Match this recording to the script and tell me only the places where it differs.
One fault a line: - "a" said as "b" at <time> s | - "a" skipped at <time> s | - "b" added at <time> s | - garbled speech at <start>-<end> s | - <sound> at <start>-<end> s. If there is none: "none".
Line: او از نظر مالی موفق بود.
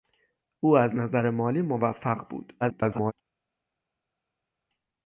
- garbled speech at 2.6-3.1 s